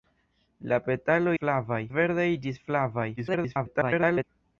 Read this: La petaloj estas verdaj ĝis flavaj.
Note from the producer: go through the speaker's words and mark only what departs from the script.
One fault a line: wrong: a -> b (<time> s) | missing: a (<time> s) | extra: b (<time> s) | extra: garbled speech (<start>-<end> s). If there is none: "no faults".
wrong: estas -> flavaj (1.4 s)
extra: garbled speech (3.2-4.2 s)